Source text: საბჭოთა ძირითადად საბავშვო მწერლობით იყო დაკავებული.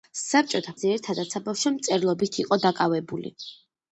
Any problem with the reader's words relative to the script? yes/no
no